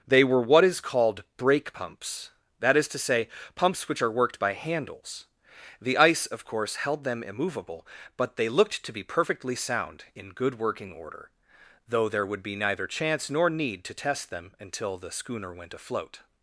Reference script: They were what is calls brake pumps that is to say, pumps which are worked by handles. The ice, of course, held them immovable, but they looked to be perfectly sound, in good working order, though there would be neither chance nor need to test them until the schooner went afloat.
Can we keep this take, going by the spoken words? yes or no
no